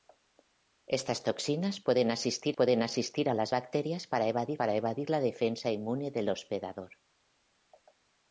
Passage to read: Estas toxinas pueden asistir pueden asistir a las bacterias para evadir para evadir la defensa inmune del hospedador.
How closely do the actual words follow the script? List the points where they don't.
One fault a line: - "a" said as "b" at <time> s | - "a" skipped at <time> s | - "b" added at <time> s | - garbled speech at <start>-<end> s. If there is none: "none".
none